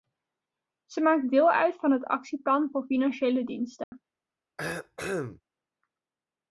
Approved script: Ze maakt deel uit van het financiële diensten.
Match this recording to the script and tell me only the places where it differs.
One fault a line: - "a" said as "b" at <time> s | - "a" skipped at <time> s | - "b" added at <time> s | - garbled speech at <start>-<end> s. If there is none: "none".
- "actieplan voor" added at 2.0 s